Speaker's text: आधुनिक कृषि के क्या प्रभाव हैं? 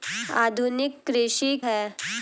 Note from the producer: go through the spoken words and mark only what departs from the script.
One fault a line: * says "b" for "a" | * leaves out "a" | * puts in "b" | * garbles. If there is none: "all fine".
* leaves out "के क्या प्रभाव"